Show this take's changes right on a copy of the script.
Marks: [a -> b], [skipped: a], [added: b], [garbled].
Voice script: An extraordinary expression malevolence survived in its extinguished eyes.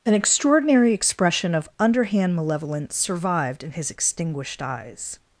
An extraordinary expression [added: of underhand] malevolence survived in [its -> his] extinguished eyes.